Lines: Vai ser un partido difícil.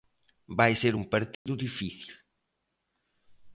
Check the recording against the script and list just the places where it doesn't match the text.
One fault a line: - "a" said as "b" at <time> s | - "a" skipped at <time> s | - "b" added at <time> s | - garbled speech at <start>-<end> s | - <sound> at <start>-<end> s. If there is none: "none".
- dropout at 1.3-1.5 s